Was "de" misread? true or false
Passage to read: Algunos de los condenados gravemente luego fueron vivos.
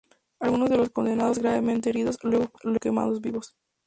false